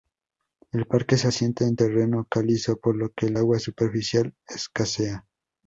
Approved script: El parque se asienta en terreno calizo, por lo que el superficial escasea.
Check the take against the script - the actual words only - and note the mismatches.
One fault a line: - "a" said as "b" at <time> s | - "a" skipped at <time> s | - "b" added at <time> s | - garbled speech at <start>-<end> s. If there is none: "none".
- "agua" added at 3.3 s